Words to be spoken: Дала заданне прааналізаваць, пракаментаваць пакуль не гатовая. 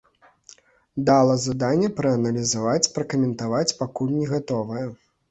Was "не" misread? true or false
false